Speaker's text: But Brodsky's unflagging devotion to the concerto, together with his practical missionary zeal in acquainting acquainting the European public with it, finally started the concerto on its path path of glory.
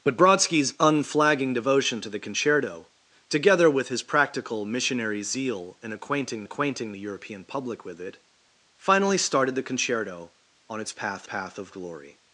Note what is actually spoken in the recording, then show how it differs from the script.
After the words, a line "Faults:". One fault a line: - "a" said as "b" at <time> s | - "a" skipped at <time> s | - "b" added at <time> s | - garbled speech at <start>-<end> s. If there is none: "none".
But Brodsky's unflagging devotion to the concerto, together with his practical missionary zeal in acquainting acquainting the European public with it, finally started the concerto on its path path of glory.
Faults:
none